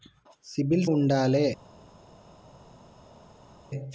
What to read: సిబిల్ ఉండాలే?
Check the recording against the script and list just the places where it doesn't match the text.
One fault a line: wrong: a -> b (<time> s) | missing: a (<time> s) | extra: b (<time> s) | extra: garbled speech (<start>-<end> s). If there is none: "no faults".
no faults